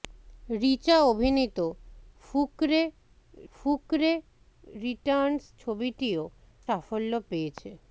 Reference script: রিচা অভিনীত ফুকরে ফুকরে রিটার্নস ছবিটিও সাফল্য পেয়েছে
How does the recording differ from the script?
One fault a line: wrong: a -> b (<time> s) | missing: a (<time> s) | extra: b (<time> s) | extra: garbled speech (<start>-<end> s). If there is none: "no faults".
no faults